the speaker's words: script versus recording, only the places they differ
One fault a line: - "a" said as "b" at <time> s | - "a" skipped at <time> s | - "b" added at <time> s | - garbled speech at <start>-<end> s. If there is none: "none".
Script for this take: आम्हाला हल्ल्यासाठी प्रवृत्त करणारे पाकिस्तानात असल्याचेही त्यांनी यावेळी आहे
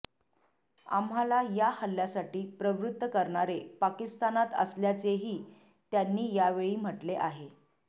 - "या" added at 1.6 s
- "म्हटले" added at 6.8 s